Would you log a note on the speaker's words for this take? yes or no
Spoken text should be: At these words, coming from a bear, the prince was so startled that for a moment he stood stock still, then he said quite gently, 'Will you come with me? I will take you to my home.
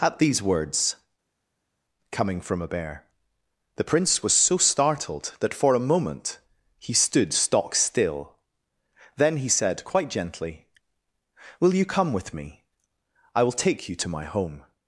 no